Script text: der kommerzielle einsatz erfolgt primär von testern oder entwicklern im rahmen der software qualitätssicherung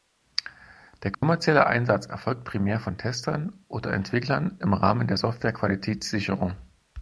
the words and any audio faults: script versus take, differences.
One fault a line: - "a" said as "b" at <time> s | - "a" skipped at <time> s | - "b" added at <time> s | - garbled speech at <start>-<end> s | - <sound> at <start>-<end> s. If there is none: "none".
- dropout at 1.1-1.2 s